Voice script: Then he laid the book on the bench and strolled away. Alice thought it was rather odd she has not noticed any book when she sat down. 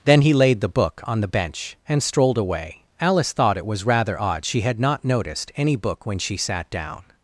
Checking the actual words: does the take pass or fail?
fail